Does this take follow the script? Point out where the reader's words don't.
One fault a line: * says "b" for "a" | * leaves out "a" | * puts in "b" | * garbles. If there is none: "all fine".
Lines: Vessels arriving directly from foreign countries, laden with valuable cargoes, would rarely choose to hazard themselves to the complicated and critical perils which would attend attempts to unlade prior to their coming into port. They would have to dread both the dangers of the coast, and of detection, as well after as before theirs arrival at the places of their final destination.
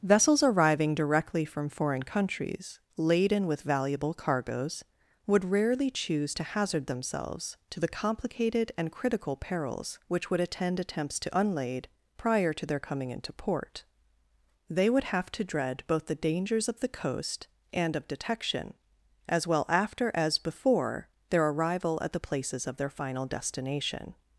* says "their" for "theirs"